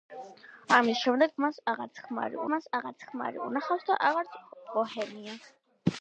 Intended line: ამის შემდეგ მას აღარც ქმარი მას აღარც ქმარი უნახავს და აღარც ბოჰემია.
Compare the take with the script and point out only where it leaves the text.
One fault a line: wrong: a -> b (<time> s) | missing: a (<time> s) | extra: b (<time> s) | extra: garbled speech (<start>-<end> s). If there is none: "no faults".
no faults